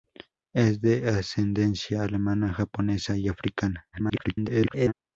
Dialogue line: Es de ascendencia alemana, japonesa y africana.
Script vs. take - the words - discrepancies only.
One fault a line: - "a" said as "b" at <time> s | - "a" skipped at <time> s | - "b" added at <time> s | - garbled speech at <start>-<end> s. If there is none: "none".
- garbled speech at 3.9-4.9 s